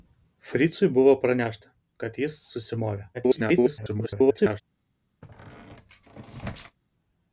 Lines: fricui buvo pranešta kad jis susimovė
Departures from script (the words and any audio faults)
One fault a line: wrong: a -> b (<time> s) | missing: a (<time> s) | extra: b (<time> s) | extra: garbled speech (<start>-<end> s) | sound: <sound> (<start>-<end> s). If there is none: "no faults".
extra: garbled speech (3.1-4.6 s)
sound: squeak (5.2-6.8 s)